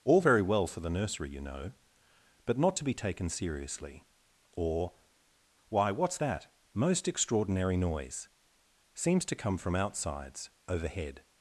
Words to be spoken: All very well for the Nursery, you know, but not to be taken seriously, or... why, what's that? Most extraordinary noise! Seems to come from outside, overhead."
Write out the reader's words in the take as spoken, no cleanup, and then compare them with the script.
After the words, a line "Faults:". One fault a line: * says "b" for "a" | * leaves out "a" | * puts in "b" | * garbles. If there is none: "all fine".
All very well for the Nursery, you know, but not to be taken seriously, or... why, what's that? Most extraordinary noise! Seems to come from outsides, overhead."
Faults:
* says "outsides" for "outside"